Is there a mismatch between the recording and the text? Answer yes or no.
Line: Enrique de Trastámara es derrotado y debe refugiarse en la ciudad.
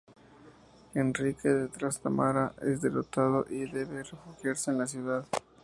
no